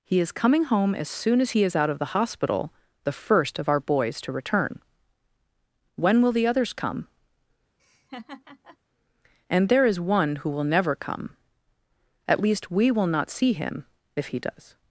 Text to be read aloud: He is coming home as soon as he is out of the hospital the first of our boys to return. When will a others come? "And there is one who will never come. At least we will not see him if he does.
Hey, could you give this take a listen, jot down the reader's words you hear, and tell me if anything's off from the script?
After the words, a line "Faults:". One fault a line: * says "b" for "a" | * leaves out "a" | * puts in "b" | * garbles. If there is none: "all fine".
He is coming home as soon as he is out of the hospital the first of our boys to return. When will the others come? "And there is one who will never come. At least we will not see him if he does.
Faults:
* says "the" for "a"